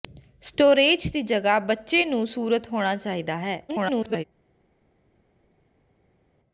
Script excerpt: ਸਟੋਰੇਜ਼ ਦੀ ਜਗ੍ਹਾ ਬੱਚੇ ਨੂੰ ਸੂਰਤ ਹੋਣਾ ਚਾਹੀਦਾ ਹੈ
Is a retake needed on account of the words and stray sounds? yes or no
yes